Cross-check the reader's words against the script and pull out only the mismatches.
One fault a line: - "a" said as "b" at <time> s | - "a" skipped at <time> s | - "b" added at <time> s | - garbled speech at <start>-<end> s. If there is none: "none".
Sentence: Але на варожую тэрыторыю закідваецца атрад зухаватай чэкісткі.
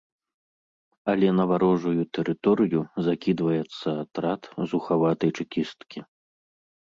none